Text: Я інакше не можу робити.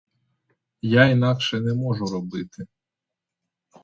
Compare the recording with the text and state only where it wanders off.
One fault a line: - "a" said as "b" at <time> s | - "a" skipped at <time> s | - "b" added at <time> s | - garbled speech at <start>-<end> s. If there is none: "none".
none